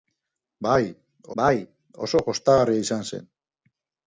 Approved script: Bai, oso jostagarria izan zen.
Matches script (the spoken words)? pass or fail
fail